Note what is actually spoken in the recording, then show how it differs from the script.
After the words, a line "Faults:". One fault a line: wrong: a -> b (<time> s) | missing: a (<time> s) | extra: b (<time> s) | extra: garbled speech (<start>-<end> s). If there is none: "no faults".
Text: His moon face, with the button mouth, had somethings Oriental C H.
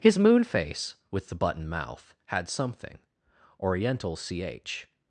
His moon face, with the button mouth, had something Oriental C H.
Faults:
wrong: somethings -> something (2.5 s)